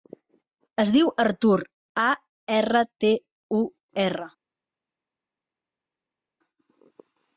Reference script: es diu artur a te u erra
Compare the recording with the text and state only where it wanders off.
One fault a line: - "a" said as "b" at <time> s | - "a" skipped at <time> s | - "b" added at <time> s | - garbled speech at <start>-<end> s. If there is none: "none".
- "erra" added at 2.5 s